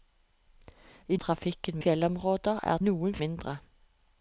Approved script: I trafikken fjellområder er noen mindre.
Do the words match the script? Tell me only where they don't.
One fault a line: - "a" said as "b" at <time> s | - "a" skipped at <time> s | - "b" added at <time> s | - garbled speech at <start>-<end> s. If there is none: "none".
none